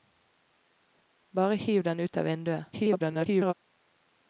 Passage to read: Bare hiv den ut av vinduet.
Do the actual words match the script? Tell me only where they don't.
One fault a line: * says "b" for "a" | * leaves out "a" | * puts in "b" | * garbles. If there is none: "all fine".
* garbles